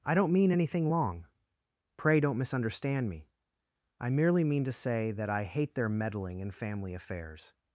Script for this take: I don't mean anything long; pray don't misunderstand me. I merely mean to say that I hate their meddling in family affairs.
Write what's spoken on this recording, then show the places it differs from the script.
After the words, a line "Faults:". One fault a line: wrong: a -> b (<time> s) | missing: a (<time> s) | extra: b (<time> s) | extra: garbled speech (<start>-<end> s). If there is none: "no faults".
I don't mean anything long; pray don't misunderstand me. I merely mean to say that I hate their meddling in family affairs.
Faults:
no faults